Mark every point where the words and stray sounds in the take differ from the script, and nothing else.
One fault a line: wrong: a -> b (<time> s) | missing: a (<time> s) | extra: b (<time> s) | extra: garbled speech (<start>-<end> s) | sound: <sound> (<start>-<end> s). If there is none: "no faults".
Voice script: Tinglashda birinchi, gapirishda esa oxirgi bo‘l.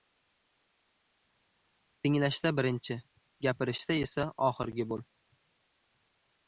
no faults